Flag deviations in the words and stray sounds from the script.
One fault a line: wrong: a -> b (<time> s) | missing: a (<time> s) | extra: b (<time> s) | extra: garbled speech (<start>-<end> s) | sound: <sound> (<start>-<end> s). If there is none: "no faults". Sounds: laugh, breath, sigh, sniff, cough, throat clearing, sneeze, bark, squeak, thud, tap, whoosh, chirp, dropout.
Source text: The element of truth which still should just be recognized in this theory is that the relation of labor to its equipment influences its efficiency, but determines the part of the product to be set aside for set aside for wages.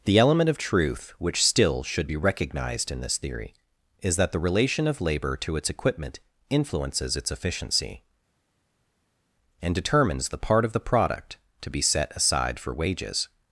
missing: just (2.1 s)
wrong: but -> and (9.6 s)
missing: set aside for (12.7 s)